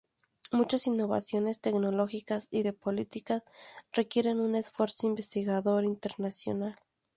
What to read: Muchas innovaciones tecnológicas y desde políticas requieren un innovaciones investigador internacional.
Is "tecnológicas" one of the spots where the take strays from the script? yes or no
no